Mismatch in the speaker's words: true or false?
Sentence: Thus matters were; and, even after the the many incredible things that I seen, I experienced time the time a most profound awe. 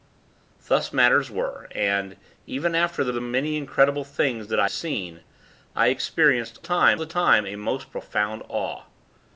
false